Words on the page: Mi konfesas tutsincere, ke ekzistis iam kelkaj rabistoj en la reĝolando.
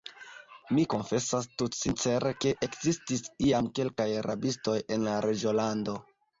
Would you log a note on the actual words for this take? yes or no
no